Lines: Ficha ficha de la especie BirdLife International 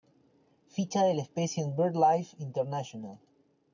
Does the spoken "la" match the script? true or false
true